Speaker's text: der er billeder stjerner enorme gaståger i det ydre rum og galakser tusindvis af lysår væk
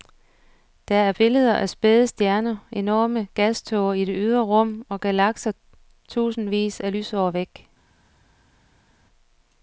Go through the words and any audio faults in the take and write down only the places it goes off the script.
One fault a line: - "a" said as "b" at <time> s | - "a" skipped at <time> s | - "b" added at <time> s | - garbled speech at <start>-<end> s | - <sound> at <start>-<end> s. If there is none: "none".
- "af spæde" added at 1.5 s